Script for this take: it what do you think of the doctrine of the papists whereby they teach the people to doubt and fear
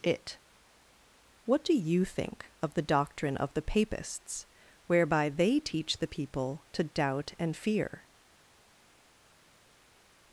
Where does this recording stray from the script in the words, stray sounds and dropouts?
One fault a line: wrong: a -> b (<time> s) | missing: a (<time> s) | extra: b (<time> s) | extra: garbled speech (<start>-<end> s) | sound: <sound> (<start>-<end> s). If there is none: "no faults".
no faults